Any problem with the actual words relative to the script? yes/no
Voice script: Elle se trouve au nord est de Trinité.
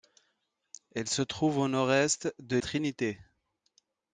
no